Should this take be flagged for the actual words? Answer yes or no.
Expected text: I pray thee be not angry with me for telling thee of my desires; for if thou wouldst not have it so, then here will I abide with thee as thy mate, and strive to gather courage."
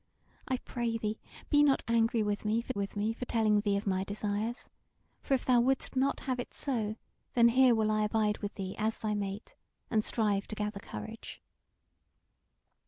yes